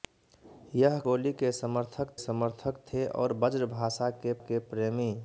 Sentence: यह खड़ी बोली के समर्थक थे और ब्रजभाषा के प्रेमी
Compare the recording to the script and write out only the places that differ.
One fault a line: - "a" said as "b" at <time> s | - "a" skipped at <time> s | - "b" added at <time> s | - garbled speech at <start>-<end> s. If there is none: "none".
- "खड़ी" skipped at 1.0 s
- "समर्थक" added at 2.2 s
- "के" added at 4.4 s